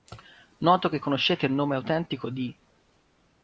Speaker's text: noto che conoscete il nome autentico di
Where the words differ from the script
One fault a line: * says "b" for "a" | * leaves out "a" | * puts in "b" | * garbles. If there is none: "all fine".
all fine